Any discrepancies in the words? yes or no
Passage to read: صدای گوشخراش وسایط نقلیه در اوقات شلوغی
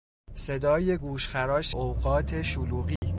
yes